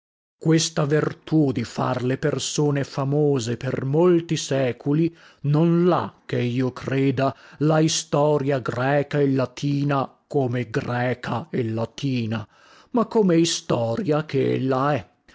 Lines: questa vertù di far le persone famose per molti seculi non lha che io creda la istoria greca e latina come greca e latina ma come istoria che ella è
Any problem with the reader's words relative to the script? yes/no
no